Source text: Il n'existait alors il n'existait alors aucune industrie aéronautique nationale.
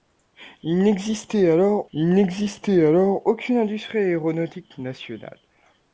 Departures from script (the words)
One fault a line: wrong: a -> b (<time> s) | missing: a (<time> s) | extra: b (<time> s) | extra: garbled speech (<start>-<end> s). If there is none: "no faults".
no faults